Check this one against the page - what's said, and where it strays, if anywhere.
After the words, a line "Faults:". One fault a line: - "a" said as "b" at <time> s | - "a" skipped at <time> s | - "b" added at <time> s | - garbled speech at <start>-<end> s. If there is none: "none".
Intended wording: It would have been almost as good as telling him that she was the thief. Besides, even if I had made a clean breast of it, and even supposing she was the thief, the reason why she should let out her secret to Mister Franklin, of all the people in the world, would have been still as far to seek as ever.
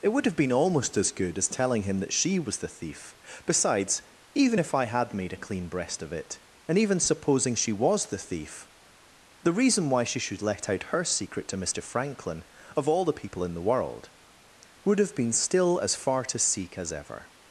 It would have been almost as good as telling him that she was the thief. Besides, even if I had made a clean breast of it, and even supposing she was the thief, the reason why she should let out her secret to Mister Franklin, of all the people in the world, would have been still as far to seek as ever.
Faults:
none